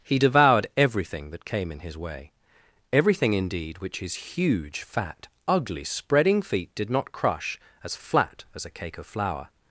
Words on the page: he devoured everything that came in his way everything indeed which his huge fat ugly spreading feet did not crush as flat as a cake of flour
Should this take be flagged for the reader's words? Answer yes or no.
no